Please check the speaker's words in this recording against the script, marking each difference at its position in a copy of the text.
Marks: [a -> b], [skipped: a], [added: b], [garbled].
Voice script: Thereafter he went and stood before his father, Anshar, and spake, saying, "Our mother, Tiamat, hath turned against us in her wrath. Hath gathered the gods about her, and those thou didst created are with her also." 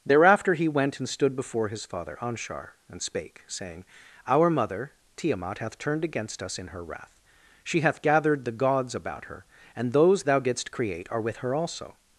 Thereafter he went and stood before his father, Anshar, and spake, saying, "Our mother, Tiamat, hath turned against us in her wrath. [added: She] Hath gathered the gods about her, and those thou didst [created -> create] are with her also."